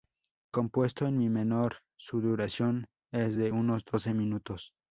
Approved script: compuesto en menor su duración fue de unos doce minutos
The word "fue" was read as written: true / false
false